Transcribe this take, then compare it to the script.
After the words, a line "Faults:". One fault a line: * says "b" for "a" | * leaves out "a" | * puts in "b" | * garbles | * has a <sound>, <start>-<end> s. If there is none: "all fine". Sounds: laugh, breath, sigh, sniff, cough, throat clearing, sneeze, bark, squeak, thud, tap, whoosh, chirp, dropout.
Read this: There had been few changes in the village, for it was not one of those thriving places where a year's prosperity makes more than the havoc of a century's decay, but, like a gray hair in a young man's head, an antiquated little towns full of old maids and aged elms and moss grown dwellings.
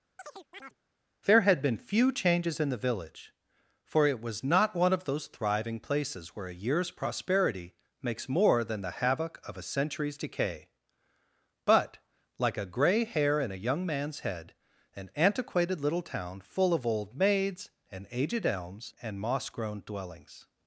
There had been few changes in the village, for it was not one of those thriving places where a year's prosperity makes more than the havoc of a century's decay, but, like a gray hair in a young man's head, an antiquated little town full of old maids and aged elms and moss grown dwellings.
Faults:
* has a chirp, 0.2-0.8 s
* says "town" for "towns"